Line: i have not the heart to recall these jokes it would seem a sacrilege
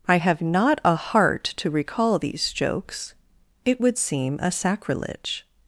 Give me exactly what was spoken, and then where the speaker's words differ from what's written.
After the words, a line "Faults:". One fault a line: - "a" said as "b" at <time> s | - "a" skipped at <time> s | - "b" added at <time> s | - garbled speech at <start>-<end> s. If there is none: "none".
i have not a heart to recall these jokes it would seem a sacrilege
Faults:
- "the" said as "a" at 0.8 s